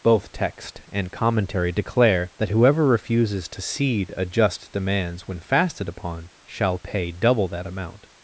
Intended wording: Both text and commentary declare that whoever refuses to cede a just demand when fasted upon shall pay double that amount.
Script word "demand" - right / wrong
wrong